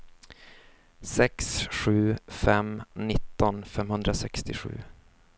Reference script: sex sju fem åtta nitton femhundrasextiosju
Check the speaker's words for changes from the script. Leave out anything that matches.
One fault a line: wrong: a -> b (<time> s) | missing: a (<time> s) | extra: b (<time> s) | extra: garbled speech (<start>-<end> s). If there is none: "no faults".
missing: åtta (2.8 s)